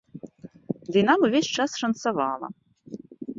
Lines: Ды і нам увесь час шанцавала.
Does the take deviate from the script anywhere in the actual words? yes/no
no